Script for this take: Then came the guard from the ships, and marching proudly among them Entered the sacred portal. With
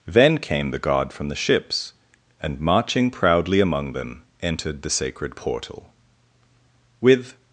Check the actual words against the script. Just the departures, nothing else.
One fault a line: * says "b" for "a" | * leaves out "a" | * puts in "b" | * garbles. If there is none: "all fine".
all fine